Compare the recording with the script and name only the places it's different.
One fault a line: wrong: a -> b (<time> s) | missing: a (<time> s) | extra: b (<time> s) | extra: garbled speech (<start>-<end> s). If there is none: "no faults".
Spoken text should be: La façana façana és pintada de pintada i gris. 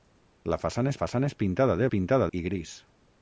no faults